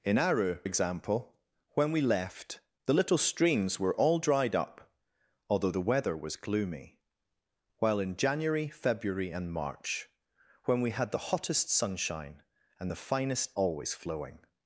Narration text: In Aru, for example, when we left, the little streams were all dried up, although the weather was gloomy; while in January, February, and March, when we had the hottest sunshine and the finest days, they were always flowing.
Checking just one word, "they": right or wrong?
wrong